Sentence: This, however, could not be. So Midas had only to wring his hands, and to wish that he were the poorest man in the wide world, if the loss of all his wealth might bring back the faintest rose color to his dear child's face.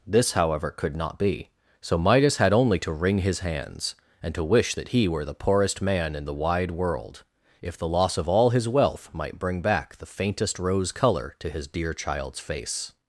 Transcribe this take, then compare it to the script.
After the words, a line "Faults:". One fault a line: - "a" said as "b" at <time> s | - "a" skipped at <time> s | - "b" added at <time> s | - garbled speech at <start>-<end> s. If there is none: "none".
This, however, could not be. So Midas had only to wring his hands, and to wish that he were the poorest man in the wide world, if the loss of all his wealth might bring back the faintest rose color to his dear child's face.
Faults:
none